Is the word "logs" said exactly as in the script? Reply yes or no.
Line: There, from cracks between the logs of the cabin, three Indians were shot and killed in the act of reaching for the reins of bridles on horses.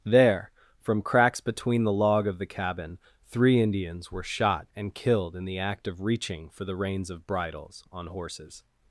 no